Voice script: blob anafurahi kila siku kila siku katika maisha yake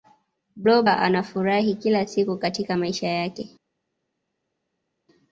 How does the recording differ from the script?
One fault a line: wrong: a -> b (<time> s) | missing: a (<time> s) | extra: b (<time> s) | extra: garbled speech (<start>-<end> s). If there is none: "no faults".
missing: kila siku (2.4 s)